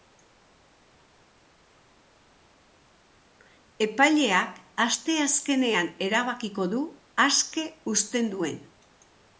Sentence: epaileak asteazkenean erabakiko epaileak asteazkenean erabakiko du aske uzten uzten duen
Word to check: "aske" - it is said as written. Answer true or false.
true